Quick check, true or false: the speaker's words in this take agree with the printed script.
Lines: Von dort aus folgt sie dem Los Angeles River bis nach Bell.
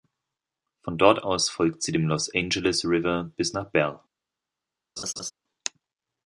true